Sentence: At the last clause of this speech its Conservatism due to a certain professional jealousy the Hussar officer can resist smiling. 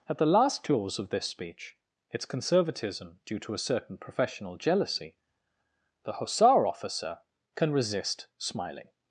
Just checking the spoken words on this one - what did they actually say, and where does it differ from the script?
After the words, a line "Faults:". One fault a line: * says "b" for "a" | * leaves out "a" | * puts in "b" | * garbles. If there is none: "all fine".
At the last clause of this speech its Conservatism due to a certain professional jealousy the Hussar officer can resist smiling.
Faults:
all fine